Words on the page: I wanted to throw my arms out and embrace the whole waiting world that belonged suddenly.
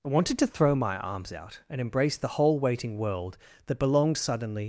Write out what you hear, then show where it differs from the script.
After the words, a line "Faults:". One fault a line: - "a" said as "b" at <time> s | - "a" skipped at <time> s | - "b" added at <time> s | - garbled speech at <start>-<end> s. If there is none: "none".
I wanted to throw my arms out and embrace the whole waiting world that belonged suddenly.
Faults:
none